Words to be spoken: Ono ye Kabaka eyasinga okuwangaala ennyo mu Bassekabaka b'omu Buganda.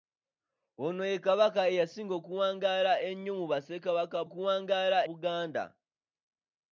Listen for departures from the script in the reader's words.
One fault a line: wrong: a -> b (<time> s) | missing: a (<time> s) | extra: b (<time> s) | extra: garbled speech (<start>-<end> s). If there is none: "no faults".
wrong: b'omu -> okuwangaala (4.3 s)